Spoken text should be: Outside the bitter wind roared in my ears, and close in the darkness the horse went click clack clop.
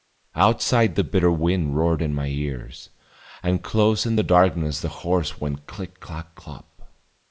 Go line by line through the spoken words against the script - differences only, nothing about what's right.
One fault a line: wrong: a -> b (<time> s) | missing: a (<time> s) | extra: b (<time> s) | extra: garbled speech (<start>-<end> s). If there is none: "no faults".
no faults